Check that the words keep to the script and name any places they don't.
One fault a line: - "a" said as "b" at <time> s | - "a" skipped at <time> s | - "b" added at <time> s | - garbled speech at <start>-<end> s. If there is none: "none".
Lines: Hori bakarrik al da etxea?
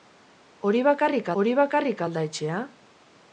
- "hori bakarrik" added at 1.4 s